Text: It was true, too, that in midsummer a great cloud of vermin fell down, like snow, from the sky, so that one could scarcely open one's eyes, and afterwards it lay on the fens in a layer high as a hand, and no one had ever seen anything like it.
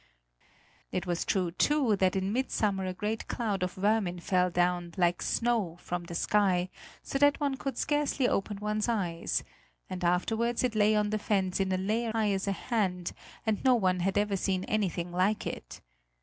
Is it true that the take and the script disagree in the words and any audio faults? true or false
false